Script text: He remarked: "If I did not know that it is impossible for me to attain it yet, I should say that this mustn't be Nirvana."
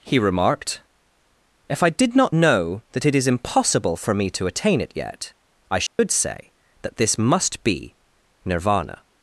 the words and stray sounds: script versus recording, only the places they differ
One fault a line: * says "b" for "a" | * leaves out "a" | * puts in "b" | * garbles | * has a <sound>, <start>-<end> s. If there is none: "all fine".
* has a dropout, 5.9-6.0 s
* says "must" for "mustn't"